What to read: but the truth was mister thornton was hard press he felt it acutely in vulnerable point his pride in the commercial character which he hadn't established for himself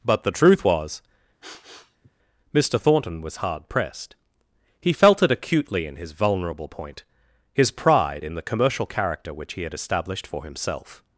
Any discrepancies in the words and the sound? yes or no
yes